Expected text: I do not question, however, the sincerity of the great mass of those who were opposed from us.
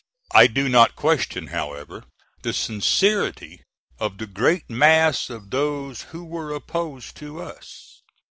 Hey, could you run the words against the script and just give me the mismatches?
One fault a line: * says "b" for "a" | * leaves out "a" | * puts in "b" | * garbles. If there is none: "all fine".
* says "to" for "from"